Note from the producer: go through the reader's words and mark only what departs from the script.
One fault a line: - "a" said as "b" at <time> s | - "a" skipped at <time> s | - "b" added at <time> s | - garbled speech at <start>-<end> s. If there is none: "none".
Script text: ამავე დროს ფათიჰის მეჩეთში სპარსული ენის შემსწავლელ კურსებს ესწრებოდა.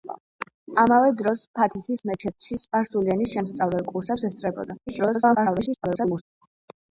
- garbled speech at 4.9-6.2 s